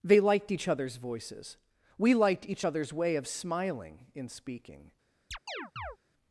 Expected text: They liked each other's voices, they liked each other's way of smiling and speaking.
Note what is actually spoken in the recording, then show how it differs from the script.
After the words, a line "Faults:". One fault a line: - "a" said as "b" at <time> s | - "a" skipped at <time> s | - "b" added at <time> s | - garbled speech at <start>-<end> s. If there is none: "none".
They liked each other's voices, we liked each other's way of smiling in speaking.
Faults:
- "they" said as "we" at 2.0 s
- "and" said as "in" at 4.1 s